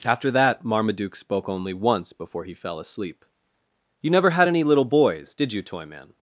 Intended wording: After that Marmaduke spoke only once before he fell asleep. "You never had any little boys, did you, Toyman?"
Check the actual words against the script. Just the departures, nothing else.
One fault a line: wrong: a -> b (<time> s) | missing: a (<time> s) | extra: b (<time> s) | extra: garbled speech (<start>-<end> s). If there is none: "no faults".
no faults